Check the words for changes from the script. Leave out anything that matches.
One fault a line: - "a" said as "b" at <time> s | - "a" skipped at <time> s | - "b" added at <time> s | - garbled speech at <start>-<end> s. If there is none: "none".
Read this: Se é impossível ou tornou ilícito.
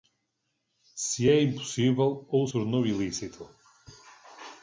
none